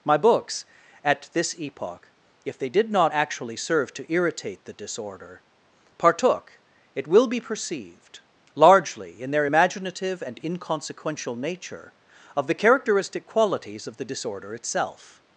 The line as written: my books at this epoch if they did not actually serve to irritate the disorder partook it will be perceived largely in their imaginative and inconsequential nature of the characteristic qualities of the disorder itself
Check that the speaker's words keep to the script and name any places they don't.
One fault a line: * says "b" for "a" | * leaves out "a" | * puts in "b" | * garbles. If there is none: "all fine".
all fine